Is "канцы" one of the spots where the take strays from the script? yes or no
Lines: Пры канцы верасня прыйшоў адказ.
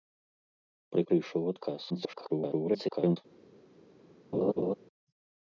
yes